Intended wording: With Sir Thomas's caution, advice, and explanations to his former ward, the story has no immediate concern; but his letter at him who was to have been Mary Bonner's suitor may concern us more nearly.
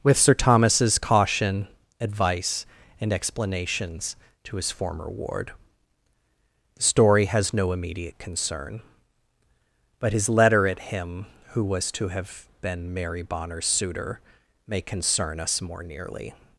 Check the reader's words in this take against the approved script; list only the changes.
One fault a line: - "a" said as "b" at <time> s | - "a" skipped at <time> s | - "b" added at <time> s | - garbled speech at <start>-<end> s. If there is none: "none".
none